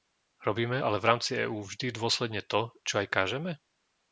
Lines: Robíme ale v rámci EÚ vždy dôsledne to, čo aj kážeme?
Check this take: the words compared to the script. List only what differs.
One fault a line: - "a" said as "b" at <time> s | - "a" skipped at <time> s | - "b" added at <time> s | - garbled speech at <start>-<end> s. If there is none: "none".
none